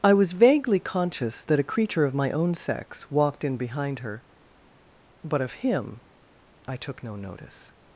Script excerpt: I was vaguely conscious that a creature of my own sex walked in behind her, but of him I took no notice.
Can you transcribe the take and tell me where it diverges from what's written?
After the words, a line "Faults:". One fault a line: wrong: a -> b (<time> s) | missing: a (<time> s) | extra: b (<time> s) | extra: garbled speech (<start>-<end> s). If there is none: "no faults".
I was vaguely conscious that a creature of my own sex walked in behind her, but of him I took no notice.
Faults:
no faults